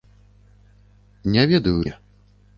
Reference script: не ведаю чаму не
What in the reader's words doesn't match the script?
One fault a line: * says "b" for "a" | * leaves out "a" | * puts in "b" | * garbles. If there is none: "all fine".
* leaves out "чаму"